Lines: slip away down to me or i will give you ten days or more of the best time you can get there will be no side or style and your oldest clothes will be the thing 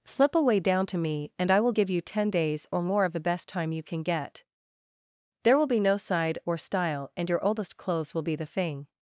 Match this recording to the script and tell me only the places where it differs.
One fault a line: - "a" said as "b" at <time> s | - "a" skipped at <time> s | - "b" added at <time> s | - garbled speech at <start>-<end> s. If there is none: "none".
- "or" said as "and" at 1.4 s